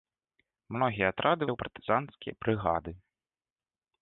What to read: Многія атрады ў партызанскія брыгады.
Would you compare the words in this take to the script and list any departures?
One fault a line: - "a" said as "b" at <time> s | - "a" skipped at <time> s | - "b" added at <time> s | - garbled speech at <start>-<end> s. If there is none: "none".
none